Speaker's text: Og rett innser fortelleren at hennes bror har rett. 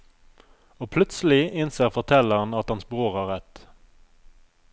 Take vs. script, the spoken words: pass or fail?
fail